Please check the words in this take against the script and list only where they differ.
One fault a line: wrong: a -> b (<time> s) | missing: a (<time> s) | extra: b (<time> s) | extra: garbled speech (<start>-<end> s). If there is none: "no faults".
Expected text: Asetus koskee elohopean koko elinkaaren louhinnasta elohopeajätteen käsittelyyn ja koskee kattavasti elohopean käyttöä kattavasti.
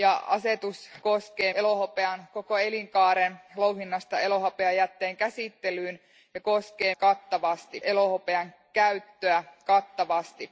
no faults